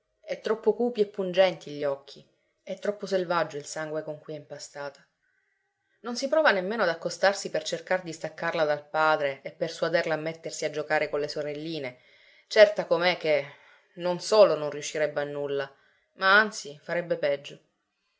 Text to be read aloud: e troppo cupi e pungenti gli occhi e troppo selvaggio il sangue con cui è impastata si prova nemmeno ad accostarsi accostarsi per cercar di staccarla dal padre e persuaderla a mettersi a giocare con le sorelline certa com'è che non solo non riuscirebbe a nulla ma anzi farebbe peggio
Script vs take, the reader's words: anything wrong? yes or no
yes